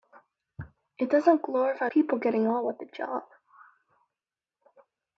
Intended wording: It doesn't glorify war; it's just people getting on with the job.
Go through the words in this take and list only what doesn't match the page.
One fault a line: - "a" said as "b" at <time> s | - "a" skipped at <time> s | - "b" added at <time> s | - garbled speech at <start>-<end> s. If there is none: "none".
- "war it's just" skipped at 1.9 s